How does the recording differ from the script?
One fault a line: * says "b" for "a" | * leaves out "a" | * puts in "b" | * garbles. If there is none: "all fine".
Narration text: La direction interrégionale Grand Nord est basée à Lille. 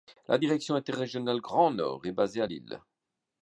all fine